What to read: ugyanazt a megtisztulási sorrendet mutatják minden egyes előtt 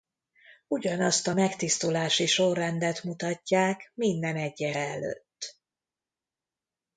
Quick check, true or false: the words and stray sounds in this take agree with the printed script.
true